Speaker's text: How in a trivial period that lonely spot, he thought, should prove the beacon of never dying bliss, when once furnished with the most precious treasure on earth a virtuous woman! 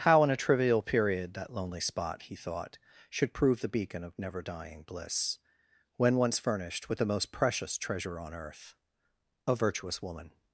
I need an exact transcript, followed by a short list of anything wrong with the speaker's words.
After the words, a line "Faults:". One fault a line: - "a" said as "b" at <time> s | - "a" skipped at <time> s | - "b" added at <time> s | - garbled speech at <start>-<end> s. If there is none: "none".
How in a trivial period that lonely spot, he thought, should prove the beacon of never dying bliss, when once furnished with the most precious treasure on earth a virtuous woman!
Faults:
none